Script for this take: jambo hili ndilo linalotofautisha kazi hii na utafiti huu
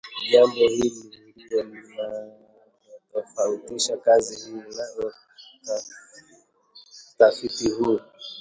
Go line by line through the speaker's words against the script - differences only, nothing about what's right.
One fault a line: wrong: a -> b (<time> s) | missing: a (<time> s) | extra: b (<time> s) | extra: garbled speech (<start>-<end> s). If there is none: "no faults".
no faults